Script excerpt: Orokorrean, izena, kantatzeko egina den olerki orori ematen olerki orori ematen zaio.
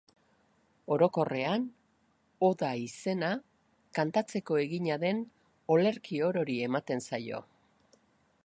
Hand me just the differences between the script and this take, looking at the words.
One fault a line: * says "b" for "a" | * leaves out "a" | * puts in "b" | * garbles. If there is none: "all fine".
* puts in "oda"
* leaves out "olerki orori ematen"